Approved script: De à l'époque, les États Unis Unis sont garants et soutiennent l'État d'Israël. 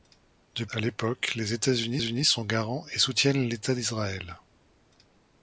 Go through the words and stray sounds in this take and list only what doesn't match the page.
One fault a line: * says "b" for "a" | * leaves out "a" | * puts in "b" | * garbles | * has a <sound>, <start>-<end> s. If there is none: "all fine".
all fine